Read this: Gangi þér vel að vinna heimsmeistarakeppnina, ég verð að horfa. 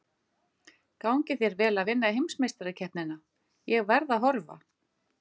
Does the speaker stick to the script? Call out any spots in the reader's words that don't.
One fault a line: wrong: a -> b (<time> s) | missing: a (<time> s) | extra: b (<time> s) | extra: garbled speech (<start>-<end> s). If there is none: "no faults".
no faults